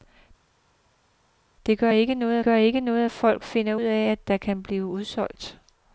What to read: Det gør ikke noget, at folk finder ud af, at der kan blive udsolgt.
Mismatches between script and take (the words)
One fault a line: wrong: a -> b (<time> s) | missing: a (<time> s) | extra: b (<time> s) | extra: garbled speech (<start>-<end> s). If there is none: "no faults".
extra: gør ikke noget (2.4 s)
missing: ud (3.8 s)